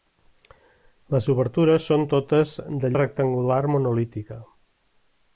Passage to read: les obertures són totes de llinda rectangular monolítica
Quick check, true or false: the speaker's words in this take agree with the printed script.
false